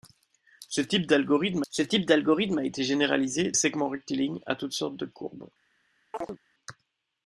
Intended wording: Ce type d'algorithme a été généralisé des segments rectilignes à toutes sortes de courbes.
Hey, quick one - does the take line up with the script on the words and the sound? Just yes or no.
no